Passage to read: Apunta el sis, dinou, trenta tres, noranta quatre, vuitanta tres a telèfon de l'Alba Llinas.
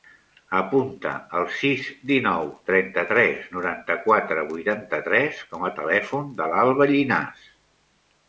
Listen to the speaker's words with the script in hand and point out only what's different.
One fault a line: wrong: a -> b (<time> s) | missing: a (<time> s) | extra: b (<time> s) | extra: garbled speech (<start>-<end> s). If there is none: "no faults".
extra: com (5.5 s)